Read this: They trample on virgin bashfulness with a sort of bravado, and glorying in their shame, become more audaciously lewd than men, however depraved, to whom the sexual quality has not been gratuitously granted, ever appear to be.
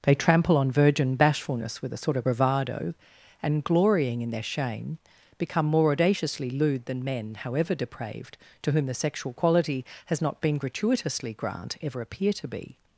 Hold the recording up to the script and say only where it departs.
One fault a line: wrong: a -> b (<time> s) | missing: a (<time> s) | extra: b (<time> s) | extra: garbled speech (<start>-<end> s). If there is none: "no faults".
wrong: granted -> grant (11.3 s)